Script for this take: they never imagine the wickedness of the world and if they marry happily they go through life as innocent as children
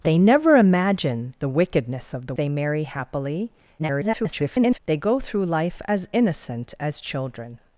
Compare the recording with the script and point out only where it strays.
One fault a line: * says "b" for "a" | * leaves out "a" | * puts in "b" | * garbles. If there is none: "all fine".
* leaves out "world and if"
* garbles